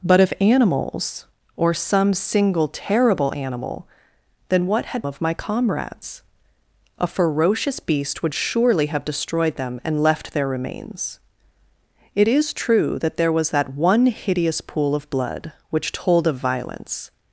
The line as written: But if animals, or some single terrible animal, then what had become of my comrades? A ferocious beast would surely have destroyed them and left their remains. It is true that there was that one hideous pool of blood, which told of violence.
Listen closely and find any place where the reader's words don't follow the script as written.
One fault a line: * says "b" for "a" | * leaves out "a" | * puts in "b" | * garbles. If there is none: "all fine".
* leaves out "become"